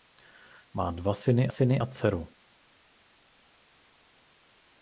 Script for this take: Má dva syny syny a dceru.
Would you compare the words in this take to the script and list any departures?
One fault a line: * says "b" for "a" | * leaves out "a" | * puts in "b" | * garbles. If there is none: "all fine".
all fine